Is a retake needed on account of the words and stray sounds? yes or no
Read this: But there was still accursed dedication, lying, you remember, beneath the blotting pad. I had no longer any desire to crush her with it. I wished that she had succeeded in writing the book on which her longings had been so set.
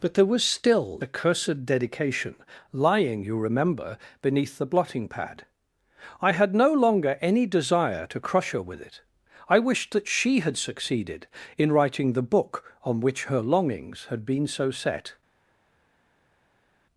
no